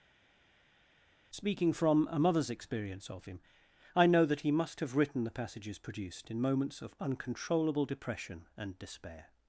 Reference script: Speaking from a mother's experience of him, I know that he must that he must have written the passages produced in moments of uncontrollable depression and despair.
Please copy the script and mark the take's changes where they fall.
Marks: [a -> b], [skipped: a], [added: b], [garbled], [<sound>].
Speaking from a mother's experience of him, I know that he must [skipped: that he must] have written the passages produced in moments of uncontrollable depression and despair.